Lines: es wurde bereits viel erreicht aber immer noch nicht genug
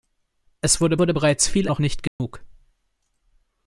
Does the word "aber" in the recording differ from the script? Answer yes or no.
yes